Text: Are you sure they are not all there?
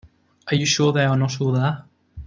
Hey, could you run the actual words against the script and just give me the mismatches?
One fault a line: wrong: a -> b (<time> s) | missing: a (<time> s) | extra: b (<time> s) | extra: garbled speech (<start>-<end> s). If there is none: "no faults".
no faults